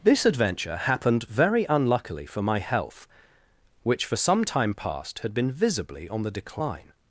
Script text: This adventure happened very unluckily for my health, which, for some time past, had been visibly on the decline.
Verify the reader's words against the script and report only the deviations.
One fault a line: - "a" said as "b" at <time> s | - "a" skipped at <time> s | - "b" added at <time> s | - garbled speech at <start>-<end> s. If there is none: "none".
none